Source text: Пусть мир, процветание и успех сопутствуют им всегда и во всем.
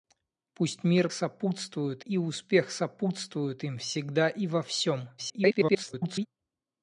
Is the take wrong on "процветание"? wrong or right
wrong